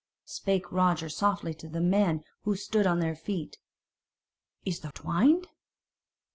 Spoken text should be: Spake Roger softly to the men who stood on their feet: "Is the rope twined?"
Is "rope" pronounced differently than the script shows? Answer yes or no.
yes